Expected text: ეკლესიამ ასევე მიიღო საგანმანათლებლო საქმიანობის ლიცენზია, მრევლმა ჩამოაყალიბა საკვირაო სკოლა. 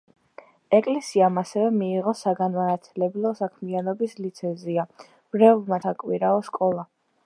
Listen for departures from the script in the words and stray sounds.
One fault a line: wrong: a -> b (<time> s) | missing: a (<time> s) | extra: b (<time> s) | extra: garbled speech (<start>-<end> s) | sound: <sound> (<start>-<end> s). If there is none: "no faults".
missing: ჩამოაყალიბა (5.8 s)